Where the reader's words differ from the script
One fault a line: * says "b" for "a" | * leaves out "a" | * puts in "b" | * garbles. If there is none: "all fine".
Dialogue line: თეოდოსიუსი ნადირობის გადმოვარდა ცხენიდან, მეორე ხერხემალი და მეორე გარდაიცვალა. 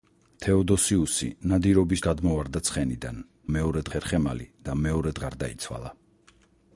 all fine